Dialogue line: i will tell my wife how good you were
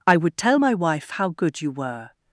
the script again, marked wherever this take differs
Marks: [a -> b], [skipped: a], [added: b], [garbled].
i [will -> would] tell my wife how good you were